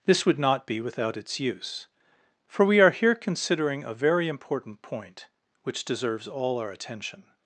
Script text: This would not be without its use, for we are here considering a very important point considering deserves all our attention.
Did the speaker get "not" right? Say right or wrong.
right